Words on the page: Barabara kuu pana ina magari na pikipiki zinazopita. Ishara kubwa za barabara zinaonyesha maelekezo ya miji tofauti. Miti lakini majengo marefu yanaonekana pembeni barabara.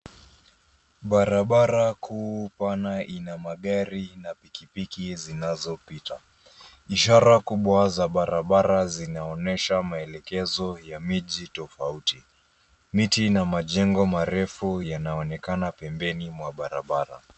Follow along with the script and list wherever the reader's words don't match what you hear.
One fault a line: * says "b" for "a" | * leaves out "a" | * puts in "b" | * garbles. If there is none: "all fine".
* says "na" for "lakini"
* puts in "mwa"